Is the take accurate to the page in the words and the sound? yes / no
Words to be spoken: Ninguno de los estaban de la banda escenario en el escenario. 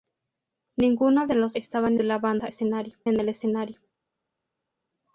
yes